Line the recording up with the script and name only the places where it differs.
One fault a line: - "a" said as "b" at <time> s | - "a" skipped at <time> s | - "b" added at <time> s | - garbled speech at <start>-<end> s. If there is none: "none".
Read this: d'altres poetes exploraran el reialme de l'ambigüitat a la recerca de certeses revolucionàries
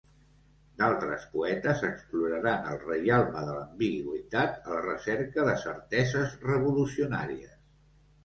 none